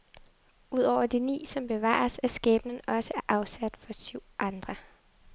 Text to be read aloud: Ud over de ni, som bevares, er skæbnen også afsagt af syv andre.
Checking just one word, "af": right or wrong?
wrong